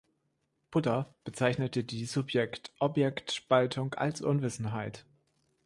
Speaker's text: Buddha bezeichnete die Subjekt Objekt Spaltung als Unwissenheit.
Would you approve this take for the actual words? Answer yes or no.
yes